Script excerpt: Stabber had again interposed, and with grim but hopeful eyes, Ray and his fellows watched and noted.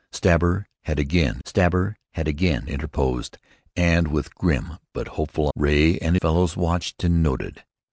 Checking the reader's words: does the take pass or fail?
fail